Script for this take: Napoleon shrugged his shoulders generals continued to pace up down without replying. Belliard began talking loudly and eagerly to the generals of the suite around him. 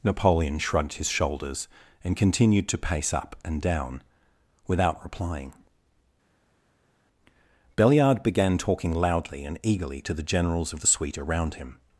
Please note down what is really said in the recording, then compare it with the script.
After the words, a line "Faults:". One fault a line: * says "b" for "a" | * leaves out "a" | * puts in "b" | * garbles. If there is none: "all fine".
Napoleon shrugged his shoulders and continued to pace up and down without replying. Belliard began talking loudly and eagerly to the generals of the suite around him.
Faults:
* says "and" for "generals"
* puts in "and"